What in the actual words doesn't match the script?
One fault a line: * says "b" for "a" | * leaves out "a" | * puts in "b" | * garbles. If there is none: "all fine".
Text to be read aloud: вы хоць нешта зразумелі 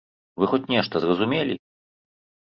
all fine